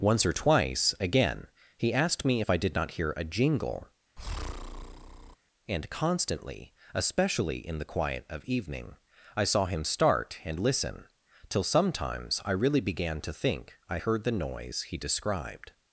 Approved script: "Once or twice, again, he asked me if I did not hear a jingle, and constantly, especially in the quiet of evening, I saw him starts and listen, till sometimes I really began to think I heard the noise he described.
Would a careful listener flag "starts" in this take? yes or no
yes